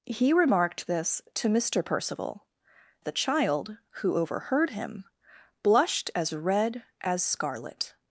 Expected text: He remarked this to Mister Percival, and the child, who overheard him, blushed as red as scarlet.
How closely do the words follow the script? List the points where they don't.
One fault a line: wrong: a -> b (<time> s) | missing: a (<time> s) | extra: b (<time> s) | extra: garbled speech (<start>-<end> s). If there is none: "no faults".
missing: and (2.5 s)